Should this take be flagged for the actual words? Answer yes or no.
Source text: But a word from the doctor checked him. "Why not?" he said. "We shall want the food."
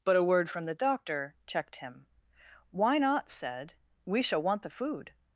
yes